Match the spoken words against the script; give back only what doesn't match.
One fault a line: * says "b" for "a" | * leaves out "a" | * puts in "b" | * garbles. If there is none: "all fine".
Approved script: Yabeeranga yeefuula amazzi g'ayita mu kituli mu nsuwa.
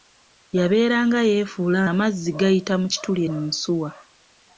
all fine